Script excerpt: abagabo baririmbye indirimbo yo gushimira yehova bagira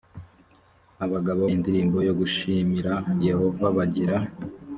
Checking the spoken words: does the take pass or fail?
fail